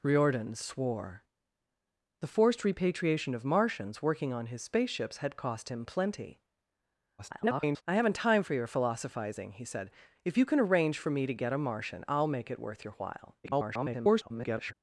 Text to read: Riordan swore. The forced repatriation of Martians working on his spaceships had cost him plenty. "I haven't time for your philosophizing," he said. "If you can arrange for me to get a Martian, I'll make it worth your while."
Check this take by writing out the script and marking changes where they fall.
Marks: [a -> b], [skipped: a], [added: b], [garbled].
Riordan swore. The forced repatriation of Martians working on his spaceships had cost him plenty. [garbled] "I haven't time for your philosophizing," he said. "If you can arrange for me to get a Martian, I'll make it worth your while." [garbled]